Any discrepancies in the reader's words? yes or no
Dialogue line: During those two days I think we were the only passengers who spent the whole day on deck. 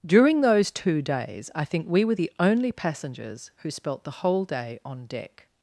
yes